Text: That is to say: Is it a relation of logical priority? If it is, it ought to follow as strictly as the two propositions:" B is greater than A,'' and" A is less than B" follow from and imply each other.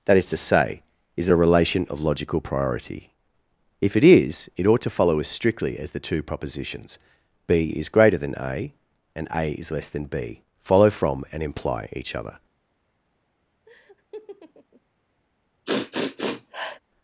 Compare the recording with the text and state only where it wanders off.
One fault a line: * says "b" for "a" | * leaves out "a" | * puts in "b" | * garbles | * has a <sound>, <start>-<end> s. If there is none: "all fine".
* has a laugh, 13.7-14.8 s
* has a sniff, 15.7-16.8 s